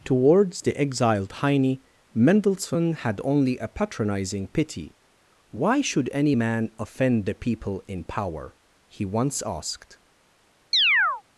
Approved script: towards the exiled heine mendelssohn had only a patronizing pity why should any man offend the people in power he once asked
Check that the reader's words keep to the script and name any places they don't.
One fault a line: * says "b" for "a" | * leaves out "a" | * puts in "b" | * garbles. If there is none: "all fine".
all fine